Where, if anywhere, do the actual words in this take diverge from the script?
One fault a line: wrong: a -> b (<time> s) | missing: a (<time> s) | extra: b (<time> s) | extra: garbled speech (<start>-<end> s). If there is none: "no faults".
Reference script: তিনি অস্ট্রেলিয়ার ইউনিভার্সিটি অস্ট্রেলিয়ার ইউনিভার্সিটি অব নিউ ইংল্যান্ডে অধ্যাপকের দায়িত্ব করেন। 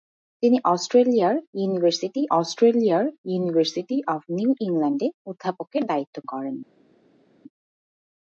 no faults